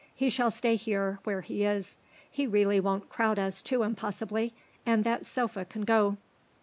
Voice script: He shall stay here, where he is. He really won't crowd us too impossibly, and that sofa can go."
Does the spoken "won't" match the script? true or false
true